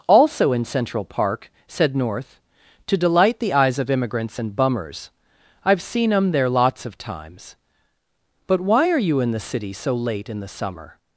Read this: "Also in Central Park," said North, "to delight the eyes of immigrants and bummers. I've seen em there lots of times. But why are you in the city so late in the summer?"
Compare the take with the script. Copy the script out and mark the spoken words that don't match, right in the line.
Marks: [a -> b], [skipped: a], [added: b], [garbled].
"Also in Central Park," said North, "to delight the eyes of immigrants and bummers. I've seen em there lots of times. But why are you in the city so late in the summer?"